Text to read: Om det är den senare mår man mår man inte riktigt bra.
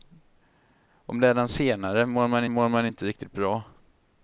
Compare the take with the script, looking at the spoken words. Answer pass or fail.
pass